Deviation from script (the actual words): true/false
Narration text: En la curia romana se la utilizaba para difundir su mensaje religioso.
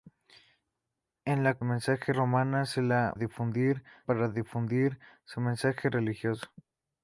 true